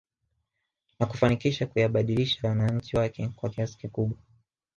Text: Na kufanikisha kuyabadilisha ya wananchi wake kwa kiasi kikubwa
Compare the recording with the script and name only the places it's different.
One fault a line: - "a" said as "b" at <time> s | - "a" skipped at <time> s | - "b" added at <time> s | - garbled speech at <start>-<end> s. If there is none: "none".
none